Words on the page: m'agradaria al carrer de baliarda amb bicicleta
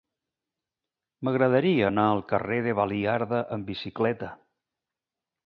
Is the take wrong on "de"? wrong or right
right